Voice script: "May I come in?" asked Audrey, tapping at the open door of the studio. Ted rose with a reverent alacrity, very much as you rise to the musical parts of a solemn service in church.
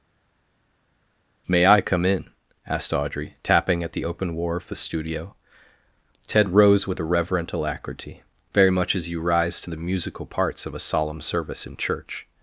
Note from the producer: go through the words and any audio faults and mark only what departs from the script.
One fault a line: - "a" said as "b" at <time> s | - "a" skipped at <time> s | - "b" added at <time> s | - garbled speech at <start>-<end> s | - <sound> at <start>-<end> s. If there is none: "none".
- "door" said as "war" at 4.3 s